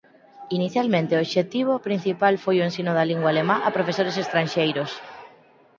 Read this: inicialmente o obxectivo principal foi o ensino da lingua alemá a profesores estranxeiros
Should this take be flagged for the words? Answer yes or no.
no